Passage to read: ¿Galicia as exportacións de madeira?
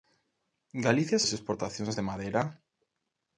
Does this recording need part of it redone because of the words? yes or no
no